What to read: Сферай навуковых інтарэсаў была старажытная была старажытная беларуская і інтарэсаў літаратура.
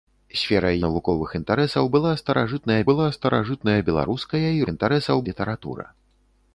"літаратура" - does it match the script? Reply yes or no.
yes